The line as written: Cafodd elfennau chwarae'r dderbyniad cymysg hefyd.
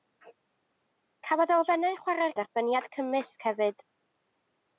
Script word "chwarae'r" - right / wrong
right